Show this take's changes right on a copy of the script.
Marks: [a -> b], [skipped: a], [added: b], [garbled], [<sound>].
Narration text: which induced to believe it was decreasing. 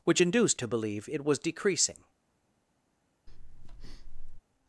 which induced to believe it was decreasing. [breath]